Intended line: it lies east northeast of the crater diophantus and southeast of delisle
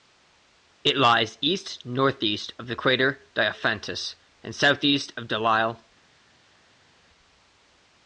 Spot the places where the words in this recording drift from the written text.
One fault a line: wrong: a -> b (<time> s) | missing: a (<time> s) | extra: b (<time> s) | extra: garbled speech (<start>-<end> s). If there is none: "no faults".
no faults